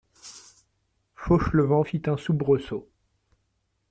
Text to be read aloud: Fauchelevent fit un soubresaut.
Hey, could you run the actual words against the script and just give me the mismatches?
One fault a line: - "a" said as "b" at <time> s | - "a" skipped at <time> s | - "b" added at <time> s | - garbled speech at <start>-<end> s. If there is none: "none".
none